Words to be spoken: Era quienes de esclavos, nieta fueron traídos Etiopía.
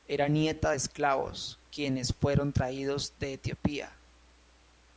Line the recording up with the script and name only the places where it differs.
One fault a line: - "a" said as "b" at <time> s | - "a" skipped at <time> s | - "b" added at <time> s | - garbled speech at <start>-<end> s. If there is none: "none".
- "quienes" said as "nieta" at 0.3 s
- "nieta" said as "quienes" at 1.7 s
- "de" added at 3.2 s